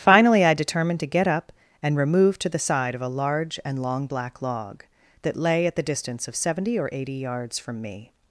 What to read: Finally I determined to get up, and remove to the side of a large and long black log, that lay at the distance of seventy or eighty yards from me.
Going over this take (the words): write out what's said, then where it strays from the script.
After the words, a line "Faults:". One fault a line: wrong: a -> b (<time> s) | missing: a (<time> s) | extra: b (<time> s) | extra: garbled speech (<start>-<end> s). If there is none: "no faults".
Finally I determined to get up, and remove to the side of a large and long black log, that lay at the distance of seventy or eighty yards from me.
Faults:
no faults